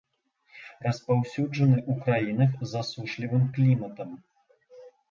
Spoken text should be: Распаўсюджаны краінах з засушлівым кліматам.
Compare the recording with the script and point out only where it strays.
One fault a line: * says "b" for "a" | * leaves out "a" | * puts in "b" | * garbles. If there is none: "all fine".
* puts in "ў"